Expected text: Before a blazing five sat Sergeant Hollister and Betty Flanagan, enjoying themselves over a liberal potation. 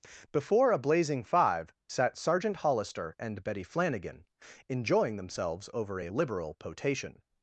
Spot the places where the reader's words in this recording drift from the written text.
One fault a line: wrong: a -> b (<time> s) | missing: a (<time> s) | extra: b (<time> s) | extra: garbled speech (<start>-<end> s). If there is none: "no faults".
no faults